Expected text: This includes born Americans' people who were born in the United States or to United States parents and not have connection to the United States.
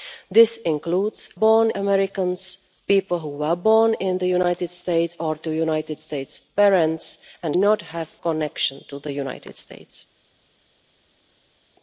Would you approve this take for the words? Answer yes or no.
yes